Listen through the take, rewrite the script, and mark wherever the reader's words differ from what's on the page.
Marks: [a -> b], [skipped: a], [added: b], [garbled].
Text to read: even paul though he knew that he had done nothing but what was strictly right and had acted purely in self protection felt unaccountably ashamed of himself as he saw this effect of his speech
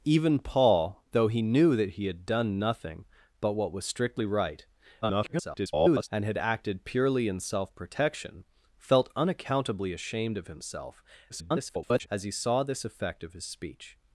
even paul though he knew that he had done nothing but what was strictly right [garbled] and had acted purely in self protection felt unaccountably ashamed of himself [garbled] as he saw this effect of his speech